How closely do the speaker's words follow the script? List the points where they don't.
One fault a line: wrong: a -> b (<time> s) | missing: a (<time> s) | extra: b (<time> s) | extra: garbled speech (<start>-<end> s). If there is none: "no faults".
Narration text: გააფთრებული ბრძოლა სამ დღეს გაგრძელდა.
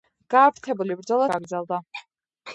missing: სამ დღეს (1.3 s)